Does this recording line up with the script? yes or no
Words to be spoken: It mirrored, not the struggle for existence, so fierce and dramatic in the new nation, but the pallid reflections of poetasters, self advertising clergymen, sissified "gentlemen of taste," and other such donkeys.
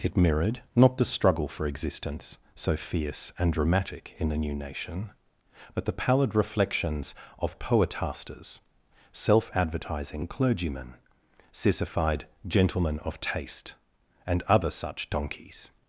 yes